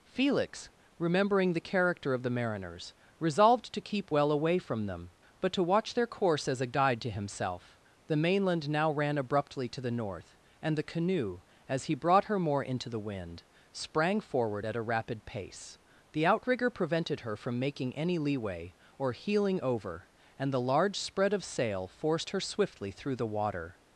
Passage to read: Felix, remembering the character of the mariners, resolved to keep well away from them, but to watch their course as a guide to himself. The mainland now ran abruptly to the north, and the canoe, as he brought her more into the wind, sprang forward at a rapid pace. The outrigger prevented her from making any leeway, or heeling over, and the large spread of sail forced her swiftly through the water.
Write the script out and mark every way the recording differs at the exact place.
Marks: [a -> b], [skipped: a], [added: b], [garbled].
Felix, remembering the character of the mariners, resolved to keep well away from them, but to watch their course as a guide to himself. The mainland now ran abruptly to the north, and the canoe, as he brought her more into the wind, sprang forward at a rapid pace. The outrigger prevented her from making any leeway, or heeling over, and the large spread of sail forced her swiftly through the water.